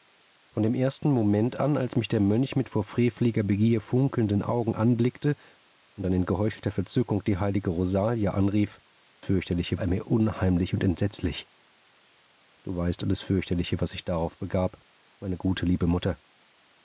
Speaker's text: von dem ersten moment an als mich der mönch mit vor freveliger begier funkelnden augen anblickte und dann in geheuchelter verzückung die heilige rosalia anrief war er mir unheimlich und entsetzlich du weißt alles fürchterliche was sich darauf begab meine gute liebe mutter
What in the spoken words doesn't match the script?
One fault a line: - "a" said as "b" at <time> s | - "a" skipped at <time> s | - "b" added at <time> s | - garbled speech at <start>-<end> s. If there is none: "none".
- "war" said as "fürchterliche" at 9.2 s